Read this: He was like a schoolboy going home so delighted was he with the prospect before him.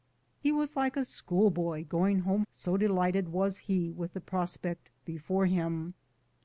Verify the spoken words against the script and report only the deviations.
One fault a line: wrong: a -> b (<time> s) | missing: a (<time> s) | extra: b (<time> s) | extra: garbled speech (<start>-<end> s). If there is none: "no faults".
no faults